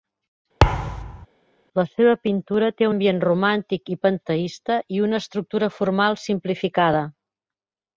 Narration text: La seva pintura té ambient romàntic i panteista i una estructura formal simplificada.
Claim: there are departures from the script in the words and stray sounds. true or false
true